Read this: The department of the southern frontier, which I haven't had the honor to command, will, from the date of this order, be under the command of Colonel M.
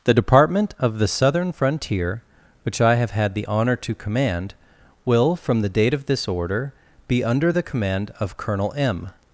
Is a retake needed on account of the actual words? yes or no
yes